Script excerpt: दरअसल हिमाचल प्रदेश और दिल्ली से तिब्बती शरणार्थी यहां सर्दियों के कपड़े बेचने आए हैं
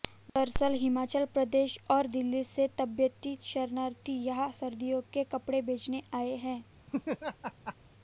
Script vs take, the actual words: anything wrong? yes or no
no